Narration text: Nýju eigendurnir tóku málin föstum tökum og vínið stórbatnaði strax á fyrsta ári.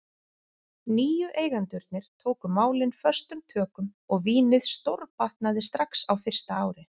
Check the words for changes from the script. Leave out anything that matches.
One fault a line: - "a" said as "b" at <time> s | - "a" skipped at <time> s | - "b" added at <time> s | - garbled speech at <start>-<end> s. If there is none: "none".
none